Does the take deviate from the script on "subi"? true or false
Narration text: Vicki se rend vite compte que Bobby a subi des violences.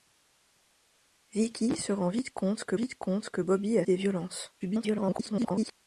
true